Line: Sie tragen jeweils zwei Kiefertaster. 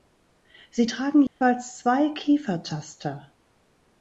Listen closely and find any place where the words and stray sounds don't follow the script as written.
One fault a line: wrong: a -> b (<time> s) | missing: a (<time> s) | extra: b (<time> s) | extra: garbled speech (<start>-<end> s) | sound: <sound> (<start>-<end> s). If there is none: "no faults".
sound: dropout (1.3-1.4 s)